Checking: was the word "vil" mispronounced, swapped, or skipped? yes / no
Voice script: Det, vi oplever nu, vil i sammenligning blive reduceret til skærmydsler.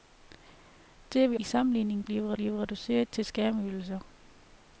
yes